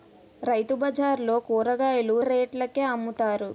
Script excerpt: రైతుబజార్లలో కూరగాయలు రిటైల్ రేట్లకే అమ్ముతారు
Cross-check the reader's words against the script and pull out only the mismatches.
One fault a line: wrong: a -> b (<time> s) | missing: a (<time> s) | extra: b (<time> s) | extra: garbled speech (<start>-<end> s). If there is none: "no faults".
missing: రిటైల్ (2.1 s)